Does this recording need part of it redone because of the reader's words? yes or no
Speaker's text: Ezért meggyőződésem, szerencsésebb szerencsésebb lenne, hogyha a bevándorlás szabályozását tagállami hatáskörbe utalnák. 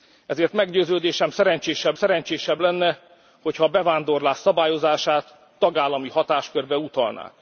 no